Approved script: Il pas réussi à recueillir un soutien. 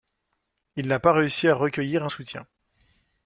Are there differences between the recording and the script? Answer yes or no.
yes